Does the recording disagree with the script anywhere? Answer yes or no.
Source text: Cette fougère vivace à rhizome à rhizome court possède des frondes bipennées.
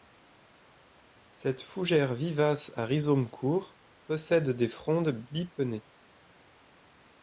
yes